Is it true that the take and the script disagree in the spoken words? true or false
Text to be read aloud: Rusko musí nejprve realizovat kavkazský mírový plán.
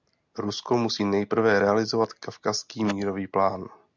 false